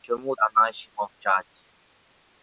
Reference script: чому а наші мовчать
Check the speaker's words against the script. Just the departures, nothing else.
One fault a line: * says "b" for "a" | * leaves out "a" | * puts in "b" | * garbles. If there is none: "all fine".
all fine